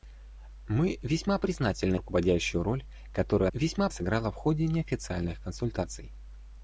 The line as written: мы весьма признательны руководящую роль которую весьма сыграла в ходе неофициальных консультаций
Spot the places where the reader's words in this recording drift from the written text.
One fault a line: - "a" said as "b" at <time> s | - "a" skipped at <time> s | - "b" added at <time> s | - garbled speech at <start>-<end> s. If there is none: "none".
none